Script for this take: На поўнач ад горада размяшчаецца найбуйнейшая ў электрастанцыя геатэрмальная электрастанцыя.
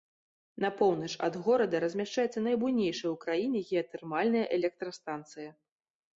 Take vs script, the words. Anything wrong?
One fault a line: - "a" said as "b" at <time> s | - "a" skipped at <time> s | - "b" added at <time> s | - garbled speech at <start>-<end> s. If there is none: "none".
- "электрастанцыя" said as "краіне" at 3.3 s